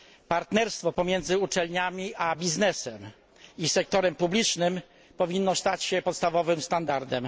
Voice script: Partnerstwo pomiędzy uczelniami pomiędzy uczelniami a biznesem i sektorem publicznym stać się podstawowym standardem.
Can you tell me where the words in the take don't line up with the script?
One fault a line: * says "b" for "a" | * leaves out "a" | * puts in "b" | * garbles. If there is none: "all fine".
* leaves out "pomiędzy uczelniami"
* puts in "powinno"